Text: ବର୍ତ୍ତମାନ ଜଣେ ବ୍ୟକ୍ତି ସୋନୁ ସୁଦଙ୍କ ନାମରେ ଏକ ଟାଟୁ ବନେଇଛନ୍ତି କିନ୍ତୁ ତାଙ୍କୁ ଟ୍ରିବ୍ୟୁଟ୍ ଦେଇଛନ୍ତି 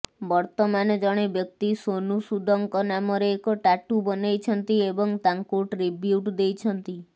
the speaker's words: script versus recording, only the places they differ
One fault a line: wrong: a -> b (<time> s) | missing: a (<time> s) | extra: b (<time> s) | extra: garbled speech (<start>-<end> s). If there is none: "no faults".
wrong: କିନ୍ତୁ -> ଏବଂ (4.9 s)